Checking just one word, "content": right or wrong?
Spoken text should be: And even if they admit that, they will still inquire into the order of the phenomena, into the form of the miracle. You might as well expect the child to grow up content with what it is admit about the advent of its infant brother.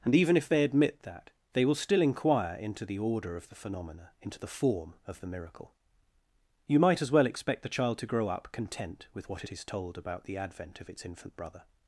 right